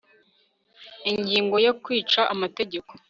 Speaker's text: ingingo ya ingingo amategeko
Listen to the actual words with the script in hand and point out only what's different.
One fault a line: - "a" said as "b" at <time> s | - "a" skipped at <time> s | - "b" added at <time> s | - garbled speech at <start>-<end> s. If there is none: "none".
- "ingingo" said as "kwica" at 1.8 s